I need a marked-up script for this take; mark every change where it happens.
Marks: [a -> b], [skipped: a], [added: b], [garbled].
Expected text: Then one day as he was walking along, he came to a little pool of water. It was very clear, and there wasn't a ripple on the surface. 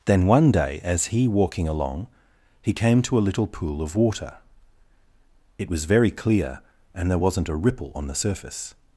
Then one day as he [skipped: was] walking along, he came to a little pool of water. It was very clear, and there wasn't a ripple on the surface.